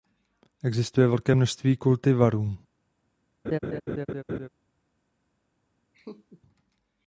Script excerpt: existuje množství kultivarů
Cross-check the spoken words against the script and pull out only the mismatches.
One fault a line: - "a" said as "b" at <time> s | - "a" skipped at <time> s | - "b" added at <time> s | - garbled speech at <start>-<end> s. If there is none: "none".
- "velké" added at 1.1 s